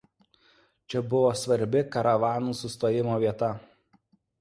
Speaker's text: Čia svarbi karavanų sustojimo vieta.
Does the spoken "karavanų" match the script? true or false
true